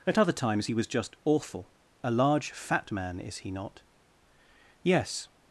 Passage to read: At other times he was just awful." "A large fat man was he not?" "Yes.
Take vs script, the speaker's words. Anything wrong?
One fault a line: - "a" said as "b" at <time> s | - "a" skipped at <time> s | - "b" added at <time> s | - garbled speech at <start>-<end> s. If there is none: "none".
- "was" said as "is" at 3.2 s